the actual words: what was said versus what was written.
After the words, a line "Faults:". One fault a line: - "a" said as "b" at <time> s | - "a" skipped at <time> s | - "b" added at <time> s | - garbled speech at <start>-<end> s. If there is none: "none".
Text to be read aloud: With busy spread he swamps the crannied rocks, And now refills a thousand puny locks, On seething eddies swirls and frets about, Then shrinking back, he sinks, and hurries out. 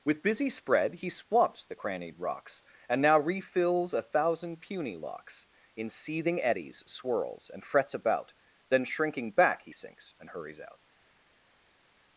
With busy spread he swamps the crannied rocks, And now refills a thousand puny locks, In seething eddies swirls and frets about, Then shrinking back, he sinks, and hurries out.
Faults:
- "On" said as "In" at 5.8 s